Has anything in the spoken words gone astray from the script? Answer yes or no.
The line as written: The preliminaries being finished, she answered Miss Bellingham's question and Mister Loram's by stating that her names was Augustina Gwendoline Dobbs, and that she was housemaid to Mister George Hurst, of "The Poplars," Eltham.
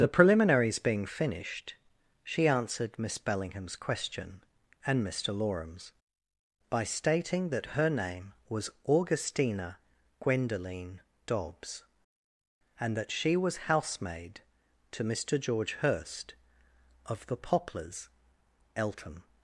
yes